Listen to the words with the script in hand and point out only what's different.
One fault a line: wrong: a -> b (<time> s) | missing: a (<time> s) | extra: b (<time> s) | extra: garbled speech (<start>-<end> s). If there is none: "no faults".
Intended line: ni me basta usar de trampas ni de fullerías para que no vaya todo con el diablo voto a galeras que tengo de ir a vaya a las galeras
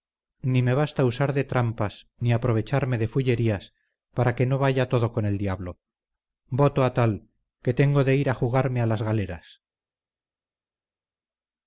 extra: aprovecharme (2.3 s)
wrong: galeras -> tal (6.9 s)
wrong: vaya -> jugarme (8.3 s)